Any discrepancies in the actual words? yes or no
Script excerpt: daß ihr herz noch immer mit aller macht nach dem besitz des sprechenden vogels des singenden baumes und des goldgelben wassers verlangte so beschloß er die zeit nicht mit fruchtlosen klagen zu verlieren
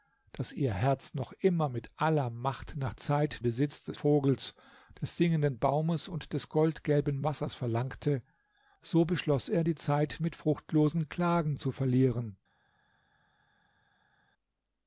yes